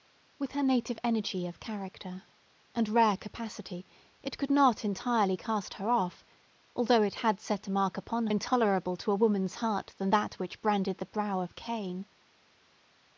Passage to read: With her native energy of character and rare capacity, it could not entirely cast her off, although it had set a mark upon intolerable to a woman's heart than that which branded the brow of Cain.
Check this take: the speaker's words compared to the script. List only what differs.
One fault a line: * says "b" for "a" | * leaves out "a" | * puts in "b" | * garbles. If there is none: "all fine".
all fine